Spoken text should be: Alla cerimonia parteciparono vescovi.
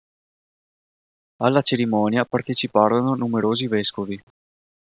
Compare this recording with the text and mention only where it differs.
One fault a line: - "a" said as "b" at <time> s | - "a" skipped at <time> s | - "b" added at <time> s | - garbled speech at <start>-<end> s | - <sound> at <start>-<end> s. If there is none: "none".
- "numerosi" added at 3.1 s